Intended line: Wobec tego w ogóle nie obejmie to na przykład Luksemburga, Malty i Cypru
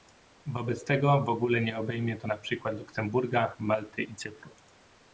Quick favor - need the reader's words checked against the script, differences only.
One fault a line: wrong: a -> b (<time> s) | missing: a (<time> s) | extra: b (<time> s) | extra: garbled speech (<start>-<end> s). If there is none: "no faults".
no faults